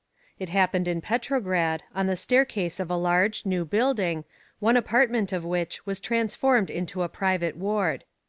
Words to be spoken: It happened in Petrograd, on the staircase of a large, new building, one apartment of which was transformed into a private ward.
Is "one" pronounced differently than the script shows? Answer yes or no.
no